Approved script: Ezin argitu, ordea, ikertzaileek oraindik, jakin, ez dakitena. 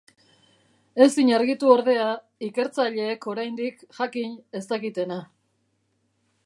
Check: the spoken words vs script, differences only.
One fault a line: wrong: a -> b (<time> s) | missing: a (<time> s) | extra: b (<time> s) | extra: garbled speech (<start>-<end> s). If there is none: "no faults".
no faults